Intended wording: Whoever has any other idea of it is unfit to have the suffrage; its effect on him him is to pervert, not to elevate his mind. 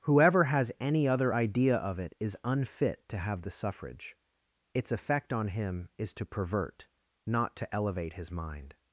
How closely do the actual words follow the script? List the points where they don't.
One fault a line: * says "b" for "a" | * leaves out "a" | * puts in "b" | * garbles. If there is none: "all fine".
* leaves out "him"